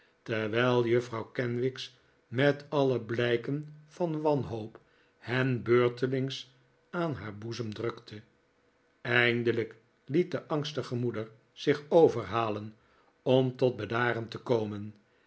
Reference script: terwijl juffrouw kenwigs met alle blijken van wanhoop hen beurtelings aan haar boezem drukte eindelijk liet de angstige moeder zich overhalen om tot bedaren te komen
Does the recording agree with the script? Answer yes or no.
yes